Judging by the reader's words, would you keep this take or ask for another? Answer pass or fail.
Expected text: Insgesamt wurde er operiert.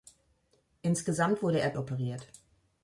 pass